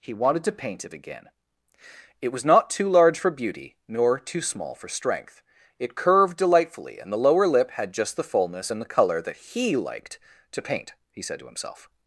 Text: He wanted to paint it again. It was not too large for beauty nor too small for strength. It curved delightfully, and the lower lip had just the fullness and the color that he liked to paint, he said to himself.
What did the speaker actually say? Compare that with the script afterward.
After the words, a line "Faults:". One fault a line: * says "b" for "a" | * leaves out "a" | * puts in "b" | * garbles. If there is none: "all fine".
He wanted to paint it again. It was not too large for beauty nor too small for strength. It curved delightfully, and the lower lip had just the fullness and the color that he liked to paint, he said to himself.
Faults:
all fine